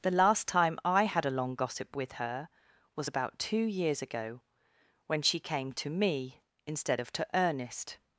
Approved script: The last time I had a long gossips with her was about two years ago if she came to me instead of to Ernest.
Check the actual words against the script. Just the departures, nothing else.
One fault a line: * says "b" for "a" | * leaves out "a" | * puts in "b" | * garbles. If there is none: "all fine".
* says "gossip" for "gossips"
* says "when" for "if"